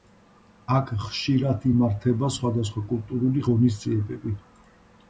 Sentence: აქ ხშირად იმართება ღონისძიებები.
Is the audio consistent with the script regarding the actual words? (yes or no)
no